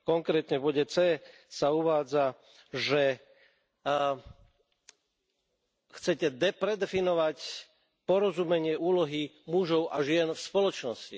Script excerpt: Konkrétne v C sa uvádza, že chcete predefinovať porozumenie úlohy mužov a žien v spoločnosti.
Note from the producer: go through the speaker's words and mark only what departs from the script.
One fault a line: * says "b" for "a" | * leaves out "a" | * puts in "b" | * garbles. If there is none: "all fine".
* puts in "bode"